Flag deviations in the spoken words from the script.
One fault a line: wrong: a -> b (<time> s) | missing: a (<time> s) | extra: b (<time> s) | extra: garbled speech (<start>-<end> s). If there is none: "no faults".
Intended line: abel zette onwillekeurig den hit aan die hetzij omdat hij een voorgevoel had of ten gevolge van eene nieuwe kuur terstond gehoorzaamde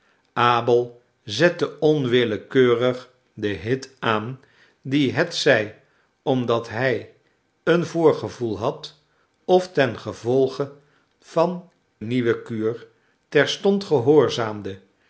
missing: eene (11.7 s)